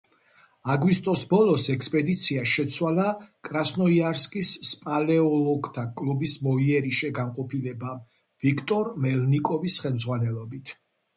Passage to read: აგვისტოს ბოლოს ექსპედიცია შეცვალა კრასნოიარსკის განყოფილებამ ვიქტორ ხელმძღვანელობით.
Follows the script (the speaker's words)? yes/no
no